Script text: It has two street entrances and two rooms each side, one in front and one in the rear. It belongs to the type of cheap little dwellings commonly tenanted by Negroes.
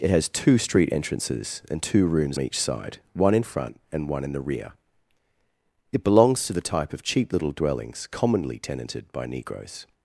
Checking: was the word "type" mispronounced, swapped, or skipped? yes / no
no